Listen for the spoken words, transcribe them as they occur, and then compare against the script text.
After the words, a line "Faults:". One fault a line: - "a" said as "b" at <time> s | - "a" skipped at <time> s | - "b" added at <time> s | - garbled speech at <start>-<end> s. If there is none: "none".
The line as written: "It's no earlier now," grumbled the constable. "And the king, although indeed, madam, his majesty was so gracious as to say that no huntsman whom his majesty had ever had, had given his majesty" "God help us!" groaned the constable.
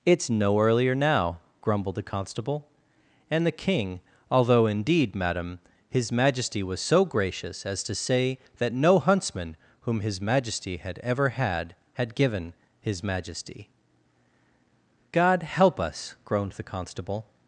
"It's no earlier now," grumbled the constable. "And the king, although indeed, madam, his majesty was so gracious as to say that no huntsman whom his majesty had ever had, had given his majesty" "God help us!" groaned the constable.
Faults:
none